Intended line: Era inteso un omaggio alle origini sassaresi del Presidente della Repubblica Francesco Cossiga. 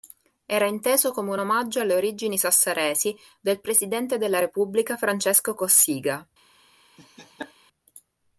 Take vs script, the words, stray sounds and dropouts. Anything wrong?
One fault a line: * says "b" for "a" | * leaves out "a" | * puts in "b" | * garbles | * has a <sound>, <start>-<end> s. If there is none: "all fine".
* puts in "come"
* has a laugh, 7.0-7.5 s